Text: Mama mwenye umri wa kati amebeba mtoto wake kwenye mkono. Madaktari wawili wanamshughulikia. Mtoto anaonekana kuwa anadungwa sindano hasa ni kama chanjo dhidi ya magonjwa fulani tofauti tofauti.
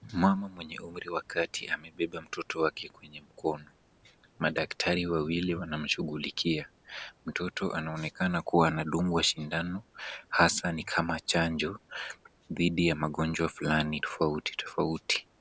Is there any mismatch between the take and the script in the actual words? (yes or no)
no